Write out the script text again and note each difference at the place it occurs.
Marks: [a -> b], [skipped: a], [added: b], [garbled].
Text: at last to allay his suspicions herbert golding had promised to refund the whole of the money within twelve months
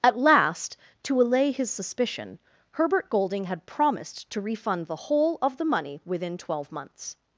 at last to allay his [suspicions -> suspicion] herbert golding had promised to refund the whole of the money within twelve months